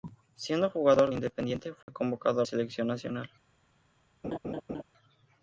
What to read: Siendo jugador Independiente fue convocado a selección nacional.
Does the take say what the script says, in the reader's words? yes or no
yes